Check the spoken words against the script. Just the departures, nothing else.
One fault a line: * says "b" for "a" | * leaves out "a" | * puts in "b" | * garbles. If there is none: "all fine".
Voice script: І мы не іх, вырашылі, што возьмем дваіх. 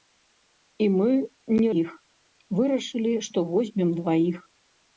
all fine